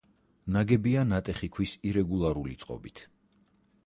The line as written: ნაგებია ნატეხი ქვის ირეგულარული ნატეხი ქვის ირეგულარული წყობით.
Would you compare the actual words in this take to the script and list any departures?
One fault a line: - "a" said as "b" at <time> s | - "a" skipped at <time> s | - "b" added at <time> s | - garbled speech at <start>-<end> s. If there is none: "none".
- "ნატეხი ქვის ირეგულარული" skipped at 2.6 s